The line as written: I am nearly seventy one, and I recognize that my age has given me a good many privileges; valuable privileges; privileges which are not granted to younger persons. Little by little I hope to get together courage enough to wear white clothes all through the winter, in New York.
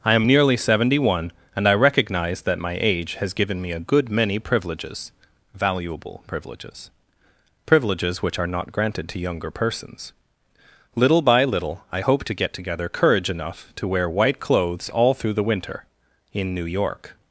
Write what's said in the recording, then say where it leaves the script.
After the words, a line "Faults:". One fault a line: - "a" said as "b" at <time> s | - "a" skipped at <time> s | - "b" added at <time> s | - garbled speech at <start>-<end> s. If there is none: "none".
I am nearly seventy one, and I recognize that my age has given me a good many privileges; valuable privileges; privileges which are not granted to younger persons. Little by little I hope to get together courage enough to wear white clothes all through the winter, in New York.
Faults:
none